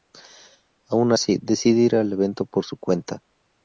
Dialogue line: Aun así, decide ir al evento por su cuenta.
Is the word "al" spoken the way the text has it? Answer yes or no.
yes